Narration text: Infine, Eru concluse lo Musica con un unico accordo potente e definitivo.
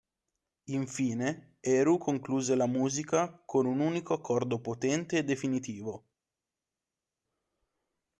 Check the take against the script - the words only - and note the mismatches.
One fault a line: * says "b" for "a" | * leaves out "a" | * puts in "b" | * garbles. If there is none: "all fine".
* says "la" for "lo"